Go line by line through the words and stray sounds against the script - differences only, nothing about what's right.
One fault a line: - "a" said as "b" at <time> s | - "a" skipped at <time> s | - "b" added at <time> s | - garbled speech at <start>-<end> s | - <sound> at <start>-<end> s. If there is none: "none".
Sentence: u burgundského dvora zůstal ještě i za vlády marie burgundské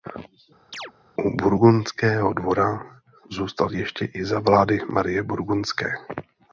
- chirp at 0.7-0.9 s